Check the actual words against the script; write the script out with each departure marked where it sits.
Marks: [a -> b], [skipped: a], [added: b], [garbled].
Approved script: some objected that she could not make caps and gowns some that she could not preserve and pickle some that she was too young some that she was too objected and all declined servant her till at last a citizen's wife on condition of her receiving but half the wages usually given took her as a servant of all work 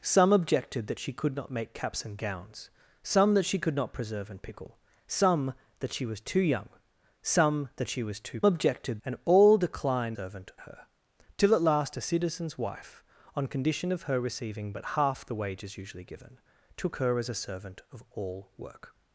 some objected that she could not make caps and gowns some that she could not preserve and pickle some that she was too young some that she was too objected and all declined servant her till at last a citizen's wife on condition of her receiving but half the wages usually given took her as a servant of all work